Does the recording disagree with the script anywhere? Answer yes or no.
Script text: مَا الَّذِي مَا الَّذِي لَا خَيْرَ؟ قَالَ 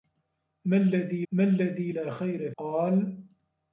no